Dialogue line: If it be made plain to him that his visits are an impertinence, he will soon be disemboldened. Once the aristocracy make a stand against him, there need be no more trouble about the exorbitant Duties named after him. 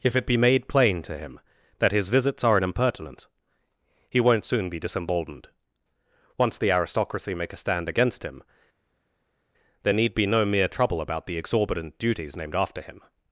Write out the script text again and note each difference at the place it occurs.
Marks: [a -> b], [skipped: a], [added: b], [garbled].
If it be made plain to him that his visits are an impertinence, he [will -> won't] soon be disemboldened. Once the aristocracy make a stand against him, there need be no [more -> mere] trouble about the exorbitant Duties named after him.